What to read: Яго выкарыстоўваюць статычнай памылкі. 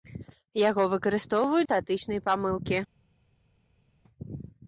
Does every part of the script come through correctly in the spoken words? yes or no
yes